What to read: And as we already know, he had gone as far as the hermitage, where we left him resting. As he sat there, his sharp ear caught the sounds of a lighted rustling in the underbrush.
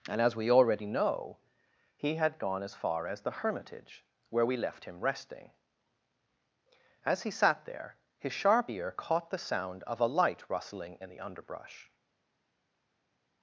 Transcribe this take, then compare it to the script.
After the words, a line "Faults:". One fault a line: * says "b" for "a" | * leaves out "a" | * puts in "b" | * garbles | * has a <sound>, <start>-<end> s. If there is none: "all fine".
And as we already know, he had gone as far as the hermitage, where we left him resting. As he sat there, his sharp ear caught the sound of a light rustling in the underbrush.
Faults:
* says "sound" for "sounds"
* says "light" for "lighted"